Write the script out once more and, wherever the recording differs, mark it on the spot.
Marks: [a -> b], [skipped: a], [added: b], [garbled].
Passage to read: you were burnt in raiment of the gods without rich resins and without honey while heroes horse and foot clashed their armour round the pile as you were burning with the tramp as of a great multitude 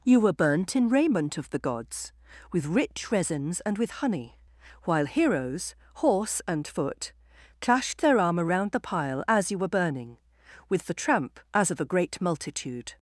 you were burnt in raiment of the gods [without -> with] rich resins and [without -> with] honey while heroes horse and foot clashed their armour round the pile as you were burning with the tramp as of a great multitude